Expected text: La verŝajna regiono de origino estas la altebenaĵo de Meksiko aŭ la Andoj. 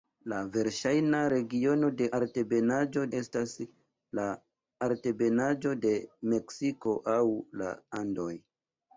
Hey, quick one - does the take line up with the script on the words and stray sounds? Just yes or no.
no